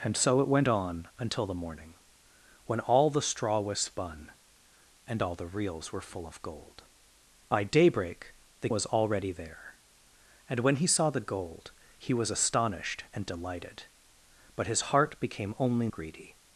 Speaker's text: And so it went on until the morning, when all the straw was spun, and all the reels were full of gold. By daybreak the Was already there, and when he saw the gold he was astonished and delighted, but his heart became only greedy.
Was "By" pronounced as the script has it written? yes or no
yes